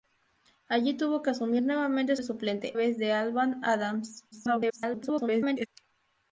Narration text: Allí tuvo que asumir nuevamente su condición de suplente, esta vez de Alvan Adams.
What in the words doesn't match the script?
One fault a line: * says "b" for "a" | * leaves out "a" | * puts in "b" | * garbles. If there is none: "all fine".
* leaves out "su condición"
* leaves out "esta"
* garbles